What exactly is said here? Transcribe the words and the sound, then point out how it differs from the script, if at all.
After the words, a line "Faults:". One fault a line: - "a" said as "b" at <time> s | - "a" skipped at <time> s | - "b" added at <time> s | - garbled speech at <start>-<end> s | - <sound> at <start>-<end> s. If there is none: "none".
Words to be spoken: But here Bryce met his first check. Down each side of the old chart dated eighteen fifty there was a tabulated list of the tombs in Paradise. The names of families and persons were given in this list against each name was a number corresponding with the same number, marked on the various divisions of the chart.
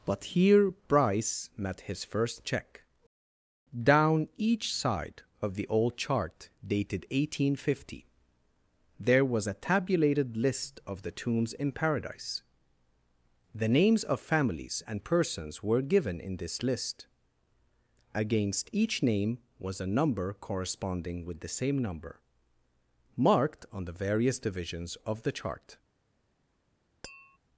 But here Bryce met his first check. Down each side of the old chart dated eighteen fifty there was a tabulated list of the tombs in Paradise. The names of families and persons were given in this list against each name was a number corresponding with the same number, marked on the various divisions of the chart.
Faults:
- tap at 27.0-27.4 s